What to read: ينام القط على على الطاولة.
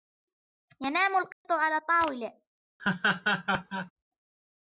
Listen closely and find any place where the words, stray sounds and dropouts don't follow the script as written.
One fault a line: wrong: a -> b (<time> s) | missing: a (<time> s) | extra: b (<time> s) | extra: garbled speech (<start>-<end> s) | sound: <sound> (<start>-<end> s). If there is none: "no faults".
sound: dropout (1.3-1.5 s)
missing: على (1.8 s)
sound: laugh (2.8-3.9 s)